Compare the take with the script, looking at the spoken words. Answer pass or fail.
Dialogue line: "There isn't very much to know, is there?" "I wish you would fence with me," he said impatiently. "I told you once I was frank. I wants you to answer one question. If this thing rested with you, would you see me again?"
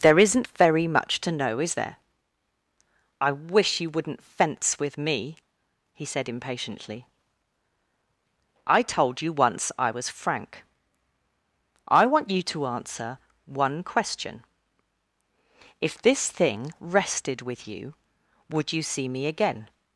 fail